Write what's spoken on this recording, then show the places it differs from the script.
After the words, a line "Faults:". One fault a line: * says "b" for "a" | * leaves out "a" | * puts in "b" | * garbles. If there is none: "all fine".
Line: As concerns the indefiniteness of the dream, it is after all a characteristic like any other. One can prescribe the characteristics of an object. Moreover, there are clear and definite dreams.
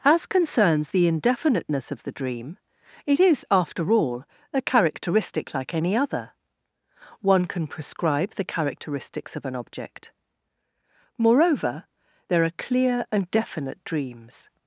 As concerns the indefiniteness of the dream, it is after all a characteristic like any other. One can prescribe the characteristics of an object. Moreover, there are clear and definite dreams.
Faults:
all fine